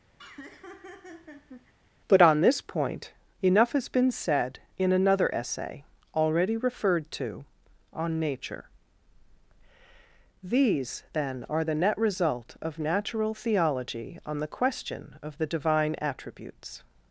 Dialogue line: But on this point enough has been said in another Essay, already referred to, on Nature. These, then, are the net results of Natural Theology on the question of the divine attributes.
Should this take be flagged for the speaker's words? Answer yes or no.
yes